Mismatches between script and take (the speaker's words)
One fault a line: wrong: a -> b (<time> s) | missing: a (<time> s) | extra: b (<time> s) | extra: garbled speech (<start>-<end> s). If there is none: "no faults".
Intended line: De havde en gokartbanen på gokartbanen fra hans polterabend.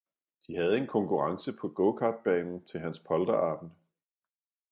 wrong: gokartbanen -> konkurrence (0.9 s)
wrong: fra -> til (2.6 s)